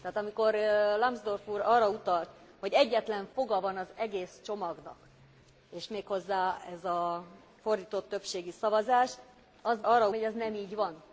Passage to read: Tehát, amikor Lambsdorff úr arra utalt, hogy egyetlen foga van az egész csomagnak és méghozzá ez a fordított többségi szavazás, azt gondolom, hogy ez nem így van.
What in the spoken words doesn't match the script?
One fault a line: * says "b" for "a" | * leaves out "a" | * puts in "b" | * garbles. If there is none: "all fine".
* says "arra" for "gondolom"